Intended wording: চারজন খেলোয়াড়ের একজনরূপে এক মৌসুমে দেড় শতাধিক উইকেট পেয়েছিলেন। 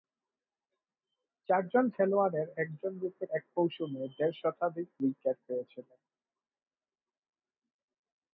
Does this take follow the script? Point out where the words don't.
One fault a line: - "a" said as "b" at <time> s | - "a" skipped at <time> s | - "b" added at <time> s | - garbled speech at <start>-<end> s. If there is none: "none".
none